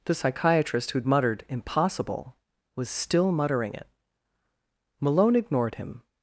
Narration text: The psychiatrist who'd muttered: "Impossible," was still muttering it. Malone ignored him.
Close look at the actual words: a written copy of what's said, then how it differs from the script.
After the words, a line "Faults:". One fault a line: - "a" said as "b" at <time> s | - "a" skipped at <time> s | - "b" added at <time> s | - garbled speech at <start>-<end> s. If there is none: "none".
The psychiatrist who'd muttered: "Impossible," was still muttering it. Malone ignored him.
Faults:
none